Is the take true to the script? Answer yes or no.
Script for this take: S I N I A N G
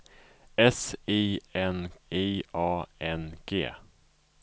yes